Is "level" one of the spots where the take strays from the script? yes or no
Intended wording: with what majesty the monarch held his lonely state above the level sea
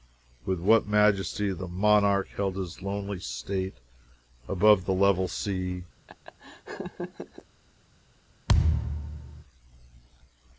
no